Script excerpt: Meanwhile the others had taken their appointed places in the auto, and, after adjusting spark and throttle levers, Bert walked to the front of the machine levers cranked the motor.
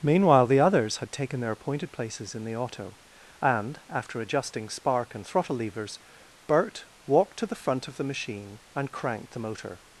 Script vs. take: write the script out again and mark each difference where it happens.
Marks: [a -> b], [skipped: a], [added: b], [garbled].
Meanwhile the others had taken their appointed places in the auto, and, after adjusting spark and throttle levers, Bert walked to the front of the machine [levers -> and] cranked the motor.